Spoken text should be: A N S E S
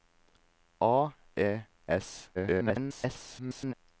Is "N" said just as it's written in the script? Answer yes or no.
no